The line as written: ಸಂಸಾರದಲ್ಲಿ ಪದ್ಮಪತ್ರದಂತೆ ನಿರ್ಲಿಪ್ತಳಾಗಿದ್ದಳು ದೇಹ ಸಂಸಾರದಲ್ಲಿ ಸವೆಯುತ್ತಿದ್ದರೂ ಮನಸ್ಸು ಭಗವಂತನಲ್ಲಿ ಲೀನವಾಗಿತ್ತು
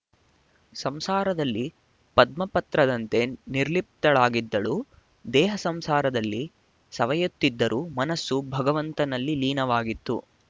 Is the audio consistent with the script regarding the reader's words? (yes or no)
yes